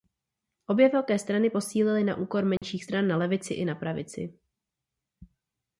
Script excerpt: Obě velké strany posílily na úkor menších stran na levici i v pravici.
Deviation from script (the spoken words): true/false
true